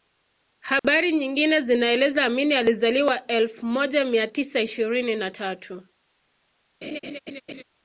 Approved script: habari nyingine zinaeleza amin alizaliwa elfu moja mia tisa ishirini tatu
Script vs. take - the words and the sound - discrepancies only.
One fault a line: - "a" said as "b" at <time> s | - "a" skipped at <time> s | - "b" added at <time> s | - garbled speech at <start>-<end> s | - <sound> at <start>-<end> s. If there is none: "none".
- dropout at 0.8-0.8 s
- "na" added at 5.1 s
- laugh at 6.8-7.6 s